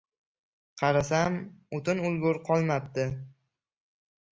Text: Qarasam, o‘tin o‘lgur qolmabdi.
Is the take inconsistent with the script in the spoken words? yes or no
no